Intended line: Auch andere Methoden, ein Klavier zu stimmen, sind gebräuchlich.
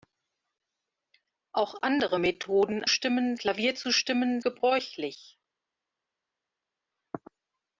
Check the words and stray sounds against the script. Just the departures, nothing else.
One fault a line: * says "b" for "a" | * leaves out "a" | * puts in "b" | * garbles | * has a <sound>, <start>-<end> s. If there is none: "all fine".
* says "stimmen" for "ein"
* leaves out "sind"